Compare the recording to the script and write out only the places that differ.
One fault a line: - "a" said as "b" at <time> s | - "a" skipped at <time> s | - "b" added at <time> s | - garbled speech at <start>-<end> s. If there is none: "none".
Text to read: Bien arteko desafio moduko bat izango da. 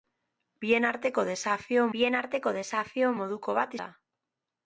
- "bien arteko desafio" added at 1.9 s
- "izango" skipped at 3.7 s